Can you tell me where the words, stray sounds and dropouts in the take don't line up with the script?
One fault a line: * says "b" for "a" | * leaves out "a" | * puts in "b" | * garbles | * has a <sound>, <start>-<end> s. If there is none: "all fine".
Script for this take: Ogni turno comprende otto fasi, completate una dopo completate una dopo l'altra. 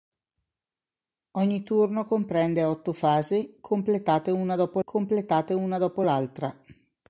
all fine